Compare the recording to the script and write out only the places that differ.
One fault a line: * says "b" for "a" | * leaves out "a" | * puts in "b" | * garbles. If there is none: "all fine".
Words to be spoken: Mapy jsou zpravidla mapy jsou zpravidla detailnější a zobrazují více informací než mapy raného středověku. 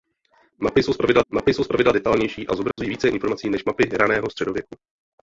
all fine